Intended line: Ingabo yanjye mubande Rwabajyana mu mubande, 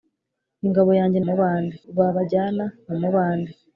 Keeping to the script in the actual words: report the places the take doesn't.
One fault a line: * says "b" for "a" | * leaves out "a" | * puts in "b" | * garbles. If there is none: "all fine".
all fine